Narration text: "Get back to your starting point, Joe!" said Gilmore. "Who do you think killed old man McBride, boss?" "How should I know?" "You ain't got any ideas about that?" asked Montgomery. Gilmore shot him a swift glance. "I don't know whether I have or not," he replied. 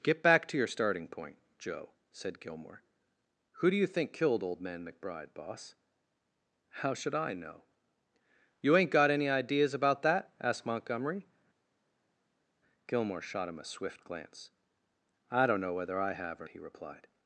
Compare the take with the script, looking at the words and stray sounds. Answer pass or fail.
fail